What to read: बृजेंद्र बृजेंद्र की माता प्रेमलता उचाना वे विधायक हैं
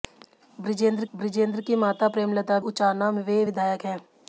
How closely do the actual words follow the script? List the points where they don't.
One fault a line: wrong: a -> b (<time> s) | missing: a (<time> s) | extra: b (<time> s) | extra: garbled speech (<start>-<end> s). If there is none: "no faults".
no faults